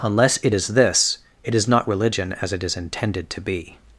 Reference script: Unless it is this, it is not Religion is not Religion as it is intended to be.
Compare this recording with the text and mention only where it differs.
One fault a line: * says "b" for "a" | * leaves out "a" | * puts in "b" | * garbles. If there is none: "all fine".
* leaves out "is not Religion"